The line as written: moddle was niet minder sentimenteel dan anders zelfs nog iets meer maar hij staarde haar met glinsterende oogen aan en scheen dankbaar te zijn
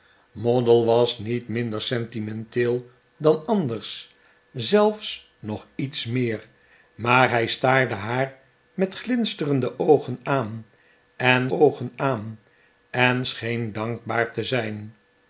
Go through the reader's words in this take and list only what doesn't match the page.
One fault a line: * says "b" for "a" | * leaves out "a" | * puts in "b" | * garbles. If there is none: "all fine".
* puts in "oogen aan en"